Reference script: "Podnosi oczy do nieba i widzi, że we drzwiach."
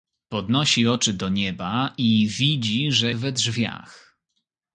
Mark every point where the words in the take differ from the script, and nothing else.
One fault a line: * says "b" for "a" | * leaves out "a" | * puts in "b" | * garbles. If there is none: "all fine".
all fine